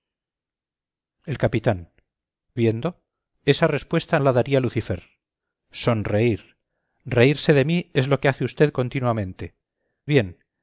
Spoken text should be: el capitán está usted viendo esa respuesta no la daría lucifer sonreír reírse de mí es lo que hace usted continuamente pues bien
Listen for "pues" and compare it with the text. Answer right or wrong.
wrong